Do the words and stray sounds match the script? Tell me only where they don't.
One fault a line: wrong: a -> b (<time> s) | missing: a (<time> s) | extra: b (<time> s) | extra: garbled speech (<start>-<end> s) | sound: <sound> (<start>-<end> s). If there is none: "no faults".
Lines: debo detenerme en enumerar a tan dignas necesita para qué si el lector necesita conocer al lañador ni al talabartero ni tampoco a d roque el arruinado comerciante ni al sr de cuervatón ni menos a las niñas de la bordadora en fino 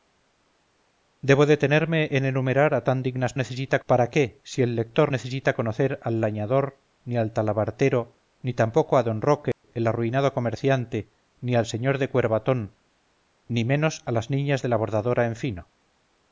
sound: dropout (9.5-9.6 s)